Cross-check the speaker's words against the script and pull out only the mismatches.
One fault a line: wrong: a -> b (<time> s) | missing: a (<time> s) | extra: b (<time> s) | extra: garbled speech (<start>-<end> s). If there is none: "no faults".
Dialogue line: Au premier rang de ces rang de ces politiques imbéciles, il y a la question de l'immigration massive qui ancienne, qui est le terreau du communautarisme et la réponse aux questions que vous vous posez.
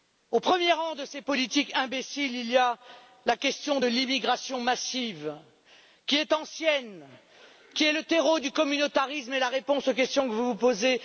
missing: rang de ces (1.2 s)
extra: est (6.2 s)